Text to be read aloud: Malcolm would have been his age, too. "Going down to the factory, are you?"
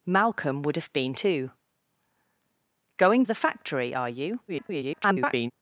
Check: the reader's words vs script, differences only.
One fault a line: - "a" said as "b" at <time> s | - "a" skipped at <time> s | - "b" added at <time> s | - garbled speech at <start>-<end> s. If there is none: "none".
- "his age" skipped at 1.1 s
- "down to" skipped at 3.2 s
- garbled speech at 4.5-5.5 s